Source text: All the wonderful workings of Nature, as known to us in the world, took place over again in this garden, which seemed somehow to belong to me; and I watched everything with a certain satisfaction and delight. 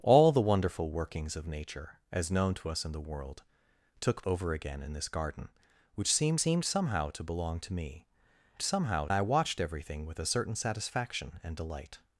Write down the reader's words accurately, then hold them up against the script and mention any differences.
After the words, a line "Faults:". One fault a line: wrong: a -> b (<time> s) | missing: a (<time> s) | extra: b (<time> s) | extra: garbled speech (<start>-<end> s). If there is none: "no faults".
All the wonderful workings of Nature, as known to us in the world, took over again in this garden, which seemed seemed somehow to belong to me; somehow I watched everything with a certain satisfaction and delight.
Faults:
missing: place (4.2 s)
extra: seemed (6.4 s)
wrong: and -> somehow (8.6 s)